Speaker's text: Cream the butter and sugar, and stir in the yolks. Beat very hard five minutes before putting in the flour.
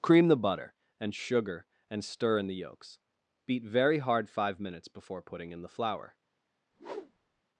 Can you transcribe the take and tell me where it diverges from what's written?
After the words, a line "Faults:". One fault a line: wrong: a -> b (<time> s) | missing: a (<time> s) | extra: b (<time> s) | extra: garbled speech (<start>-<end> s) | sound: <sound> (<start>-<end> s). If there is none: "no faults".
Cream the butter and sugar, and stir in the yolks. Beat very hard five minutes before putting in the flour.
Faults:
sound: whoosh (6.7-7.4 s)